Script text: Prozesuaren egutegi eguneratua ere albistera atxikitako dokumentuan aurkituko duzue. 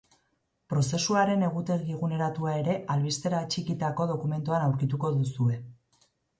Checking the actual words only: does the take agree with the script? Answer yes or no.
yes